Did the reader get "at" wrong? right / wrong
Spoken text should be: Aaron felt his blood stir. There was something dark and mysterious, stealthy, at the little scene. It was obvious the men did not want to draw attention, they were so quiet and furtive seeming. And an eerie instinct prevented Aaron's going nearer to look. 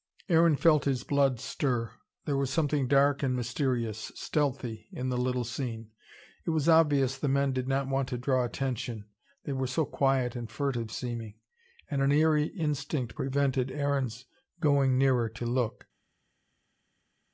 wrong